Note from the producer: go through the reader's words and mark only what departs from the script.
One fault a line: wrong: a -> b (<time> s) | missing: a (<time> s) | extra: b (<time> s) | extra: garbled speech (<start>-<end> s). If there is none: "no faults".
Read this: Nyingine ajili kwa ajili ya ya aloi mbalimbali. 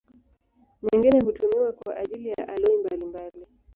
wrong: ajili -> hutumiwa (1.2 s)
missing: ya (2.5 s)